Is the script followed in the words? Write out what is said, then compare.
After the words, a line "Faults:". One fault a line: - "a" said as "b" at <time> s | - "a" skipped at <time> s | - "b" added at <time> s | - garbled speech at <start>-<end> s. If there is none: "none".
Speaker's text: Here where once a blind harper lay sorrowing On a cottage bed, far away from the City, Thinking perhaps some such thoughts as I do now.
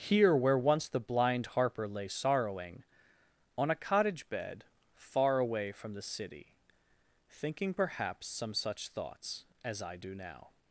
Here where once the blind harper lay sorrowing On a cottage bed, far away from the City, Thinking perhaps some such thoughts as I do now.
Faults:
- "a" said as "the" at 0.9 s